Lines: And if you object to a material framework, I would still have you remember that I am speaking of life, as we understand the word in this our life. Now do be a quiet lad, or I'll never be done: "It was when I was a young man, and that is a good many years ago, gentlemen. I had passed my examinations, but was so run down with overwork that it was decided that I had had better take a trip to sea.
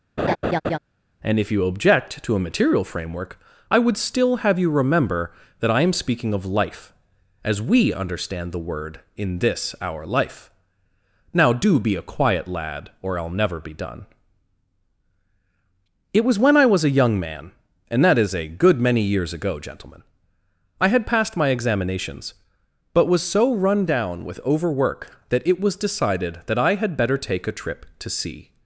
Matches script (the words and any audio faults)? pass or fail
fail